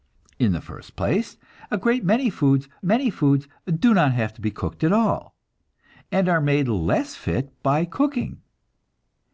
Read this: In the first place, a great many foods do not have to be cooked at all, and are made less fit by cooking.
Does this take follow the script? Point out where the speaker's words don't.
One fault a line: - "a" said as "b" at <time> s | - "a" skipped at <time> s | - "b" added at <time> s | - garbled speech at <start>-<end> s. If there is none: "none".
- "many foods" added at 2.8 s